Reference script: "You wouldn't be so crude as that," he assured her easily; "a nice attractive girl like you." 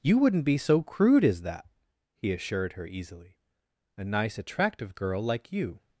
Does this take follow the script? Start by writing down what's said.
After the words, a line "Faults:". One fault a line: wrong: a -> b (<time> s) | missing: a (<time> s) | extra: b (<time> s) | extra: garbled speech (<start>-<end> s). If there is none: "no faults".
"You wouldn't be so crude as that," he assured her easily; "a nice attractive girl like you."
Faults:
no faults